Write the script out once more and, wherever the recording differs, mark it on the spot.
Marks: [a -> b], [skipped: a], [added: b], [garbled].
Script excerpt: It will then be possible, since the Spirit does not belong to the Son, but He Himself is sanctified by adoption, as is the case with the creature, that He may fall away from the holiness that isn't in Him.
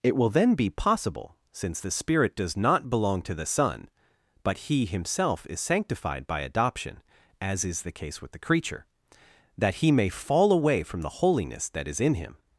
It will then be possible, since the Spirit does not belong to the Son, but He Himself is sanctified by adoption, as is the case with the creature, that He may fall away from the holiness that [isn't -> is] in Him.